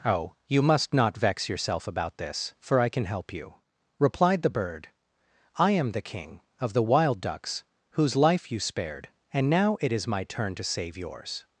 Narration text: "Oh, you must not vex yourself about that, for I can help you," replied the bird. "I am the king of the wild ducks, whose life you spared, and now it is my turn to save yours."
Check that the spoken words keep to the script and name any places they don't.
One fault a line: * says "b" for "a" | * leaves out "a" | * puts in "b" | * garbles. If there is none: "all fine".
* says "this" for "that"